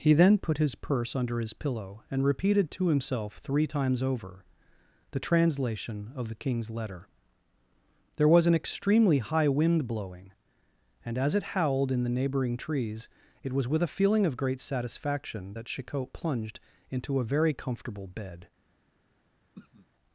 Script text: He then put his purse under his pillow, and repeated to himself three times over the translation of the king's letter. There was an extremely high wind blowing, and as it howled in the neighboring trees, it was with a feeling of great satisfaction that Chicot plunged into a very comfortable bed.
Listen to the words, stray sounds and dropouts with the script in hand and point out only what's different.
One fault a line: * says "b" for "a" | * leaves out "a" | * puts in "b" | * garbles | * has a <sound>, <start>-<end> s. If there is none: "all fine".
* has a throat clearing, 19.5-19.9 s